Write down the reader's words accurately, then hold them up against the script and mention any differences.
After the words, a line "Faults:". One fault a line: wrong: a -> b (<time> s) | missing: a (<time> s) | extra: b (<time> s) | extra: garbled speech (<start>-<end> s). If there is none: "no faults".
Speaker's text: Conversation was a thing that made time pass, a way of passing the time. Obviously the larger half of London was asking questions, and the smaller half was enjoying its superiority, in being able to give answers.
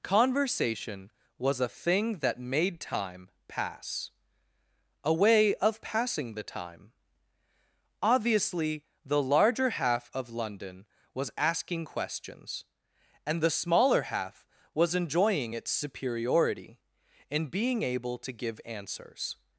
Conversation was a thing that made time pass, a way of passing the time. Obviously the larger half of London was asking questions, and the smaller half was enjoying its superiority, in being able to give answers.
Faults:
no faults